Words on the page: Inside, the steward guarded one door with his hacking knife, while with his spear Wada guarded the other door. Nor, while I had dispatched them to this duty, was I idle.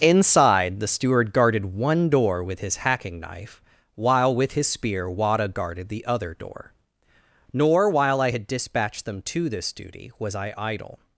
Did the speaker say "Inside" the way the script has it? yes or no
yes